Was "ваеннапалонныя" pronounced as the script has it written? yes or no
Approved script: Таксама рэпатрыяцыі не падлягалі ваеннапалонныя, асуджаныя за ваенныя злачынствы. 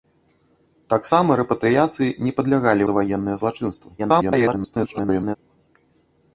no